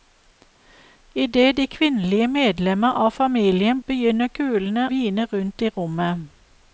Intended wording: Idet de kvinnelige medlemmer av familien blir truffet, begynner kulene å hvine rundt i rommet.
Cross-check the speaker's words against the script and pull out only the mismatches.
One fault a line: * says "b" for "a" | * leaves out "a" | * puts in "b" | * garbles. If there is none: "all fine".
* leaves out "blir truffet"
* leaves out "å"